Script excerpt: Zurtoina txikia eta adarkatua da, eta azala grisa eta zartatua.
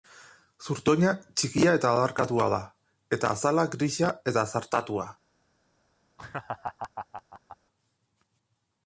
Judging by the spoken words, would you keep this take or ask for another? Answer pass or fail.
pass